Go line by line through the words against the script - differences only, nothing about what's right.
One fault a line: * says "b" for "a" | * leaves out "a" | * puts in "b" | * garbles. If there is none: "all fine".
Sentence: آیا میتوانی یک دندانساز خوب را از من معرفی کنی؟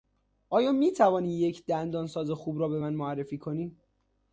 * says "به" for "از"